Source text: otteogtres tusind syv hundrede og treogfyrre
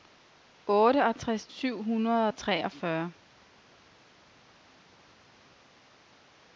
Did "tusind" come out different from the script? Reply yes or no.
yes